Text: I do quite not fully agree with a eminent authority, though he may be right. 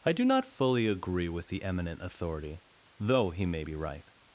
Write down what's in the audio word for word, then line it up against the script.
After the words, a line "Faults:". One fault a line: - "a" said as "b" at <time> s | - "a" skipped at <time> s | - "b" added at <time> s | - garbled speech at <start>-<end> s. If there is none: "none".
I do not fully agree with the eminent authority, though he may be right.
Faults:
- "quite" skipped at 0.2 s
- "a" said as "the" at 1.5 s